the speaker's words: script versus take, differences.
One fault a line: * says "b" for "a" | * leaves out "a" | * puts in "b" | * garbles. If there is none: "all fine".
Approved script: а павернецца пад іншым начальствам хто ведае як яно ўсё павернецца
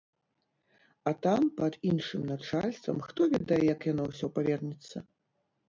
* says "там" for "павернецца"